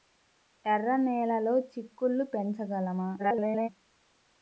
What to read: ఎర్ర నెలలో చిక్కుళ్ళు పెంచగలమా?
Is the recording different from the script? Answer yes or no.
yes